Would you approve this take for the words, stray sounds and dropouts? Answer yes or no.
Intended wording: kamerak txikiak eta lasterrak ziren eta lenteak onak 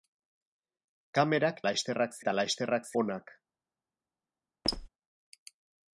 no